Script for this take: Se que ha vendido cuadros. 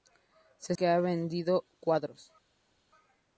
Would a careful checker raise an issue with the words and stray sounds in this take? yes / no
no